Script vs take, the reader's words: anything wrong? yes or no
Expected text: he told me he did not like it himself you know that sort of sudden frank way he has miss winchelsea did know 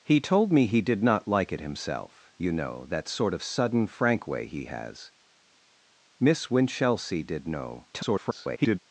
yes